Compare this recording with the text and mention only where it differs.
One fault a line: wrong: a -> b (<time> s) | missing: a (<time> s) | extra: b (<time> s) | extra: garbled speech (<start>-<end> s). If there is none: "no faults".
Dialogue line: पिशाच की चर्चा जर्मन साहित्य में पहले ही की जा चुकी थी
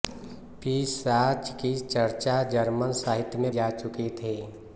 missing: पहले ही की (3.5 s)